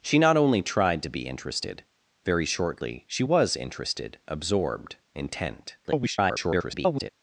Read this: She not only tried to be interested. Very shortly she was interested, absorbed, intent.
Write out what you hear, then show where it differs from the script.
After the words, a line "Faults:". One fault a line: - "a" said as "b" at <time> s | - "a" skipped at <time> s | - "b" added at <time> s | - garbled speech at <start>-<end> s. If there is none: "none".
She not only tried to be interested. Very shortly she was interested, absorbed, intent. [garbled]
Faults:
- garbled speech at 5.8-7.1 s